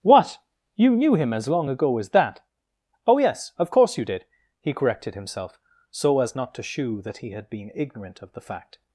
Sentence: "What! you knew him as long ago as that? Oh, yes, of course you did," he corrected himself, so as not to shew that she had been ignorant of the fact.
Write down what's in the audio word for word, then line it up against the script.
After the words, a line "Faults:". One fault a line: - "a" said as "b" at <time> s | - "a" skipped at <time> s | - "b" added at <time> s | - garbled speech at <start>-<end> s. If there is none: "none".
"What! you knew him as long ago as that? Oh, yes, of course you did," he corrected himself, so as not to shew that he had been ignorant of the fact.
Faults:
- "she" said as "he" at 7.2 s